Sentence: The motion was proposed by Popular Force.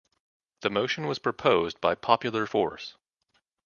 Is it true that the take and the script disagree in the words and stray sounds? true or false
false